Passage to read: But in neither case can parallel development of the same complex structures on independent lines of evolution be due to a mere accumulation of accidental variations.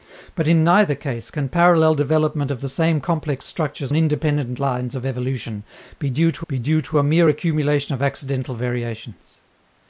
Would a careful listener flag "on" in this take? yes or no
yes